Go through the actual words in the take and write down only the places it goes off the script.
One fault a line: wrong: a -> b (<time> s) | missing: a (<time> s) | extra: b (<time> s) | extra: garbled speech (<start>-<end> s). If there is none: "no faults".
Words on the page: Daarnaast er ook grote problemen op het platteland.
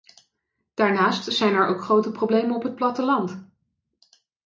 extra: zijn (1.3 s)